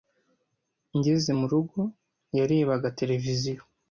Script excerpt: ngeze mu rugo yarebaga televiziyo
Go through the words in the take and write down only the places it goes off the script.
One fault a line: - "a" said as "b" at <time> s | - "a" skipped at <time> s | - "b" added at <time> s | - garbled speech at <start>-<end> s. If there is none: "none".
none